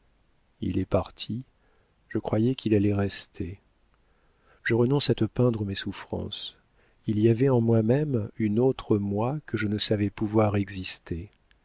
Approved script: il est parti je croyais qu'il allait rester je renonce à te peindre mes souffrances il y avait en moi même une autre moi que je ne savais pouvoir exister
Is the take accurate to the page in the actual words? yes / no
yes